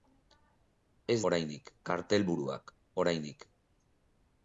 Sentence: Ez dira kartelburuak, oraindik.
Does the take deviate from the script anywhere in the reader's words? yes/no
yes